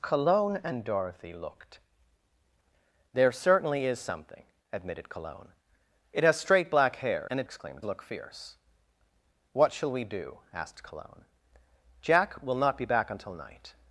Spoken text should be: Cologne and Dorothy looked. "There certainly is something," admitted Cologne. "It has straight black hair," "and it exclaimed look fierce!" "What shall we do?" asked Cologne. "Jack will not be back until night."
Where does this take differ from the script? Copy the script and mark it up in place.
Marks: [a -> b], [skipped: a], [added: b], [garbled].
Cologne and Dorothy looked. "There certainly is something," admitted Cologne. "It has straight black hair," "and it exclaimed look fierce!" "What shall we do?" asked Cologne. "Jack will not be back until night."